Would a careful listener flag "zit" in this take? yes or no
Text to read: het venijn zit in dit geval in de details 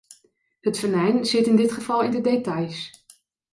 no